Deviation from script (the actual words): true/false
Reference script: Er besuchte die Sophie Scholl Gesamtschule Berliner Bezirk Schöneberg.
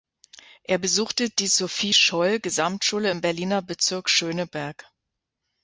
true